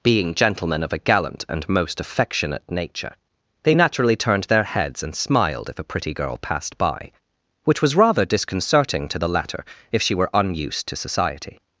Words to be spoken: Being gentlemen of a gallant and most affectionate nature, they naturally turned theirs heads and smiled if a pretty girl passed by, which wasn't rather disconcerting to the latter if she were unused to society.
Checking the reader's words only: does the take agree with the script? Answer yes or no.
no